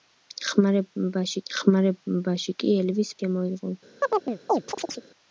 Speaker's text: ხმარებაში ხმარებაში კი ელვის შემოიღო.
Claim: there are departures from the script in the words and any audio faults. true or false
true